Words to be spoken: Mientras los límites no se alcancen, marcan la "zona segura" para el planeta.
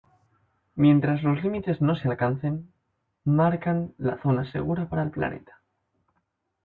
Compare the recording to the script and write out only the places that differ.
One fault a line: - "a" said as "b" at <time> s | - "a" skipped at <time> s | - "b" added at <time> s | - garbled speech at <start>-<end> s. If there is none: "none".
none